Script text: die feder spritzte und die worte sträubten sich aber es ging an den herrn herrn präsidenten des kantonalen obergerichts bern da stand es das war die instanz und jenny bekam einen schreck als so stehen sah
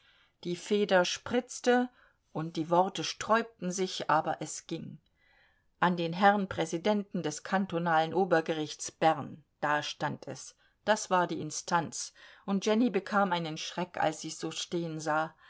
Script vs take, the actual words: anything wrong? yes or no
yes